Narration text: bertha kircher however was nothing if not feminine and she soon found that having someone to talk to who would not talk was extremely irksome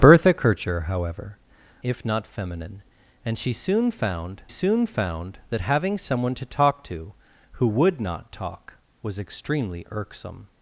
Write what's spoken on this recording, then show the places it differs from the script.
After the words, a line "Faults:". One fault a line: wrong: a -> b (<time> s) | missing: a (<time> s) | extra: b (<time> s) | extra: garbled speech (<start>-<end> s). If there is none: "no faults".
bertha kircher however if not feminine and she soon found soon found that having someone to talk to who would not talk was extremely irksome
Faults:
missing: was nothing (1.4 s)
extra: soon found (4.5 s)